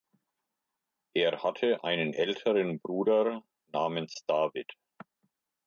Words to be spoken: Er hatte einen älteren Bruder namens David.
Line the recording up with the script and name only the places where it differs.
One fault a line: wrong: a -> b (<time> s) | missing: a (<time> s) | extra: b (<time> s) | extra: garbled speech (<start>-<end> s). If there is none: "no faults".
no faults